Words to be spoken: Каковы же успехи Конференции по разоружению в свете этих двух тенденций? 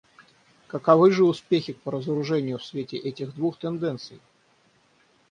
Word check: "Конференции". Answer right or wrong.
wrong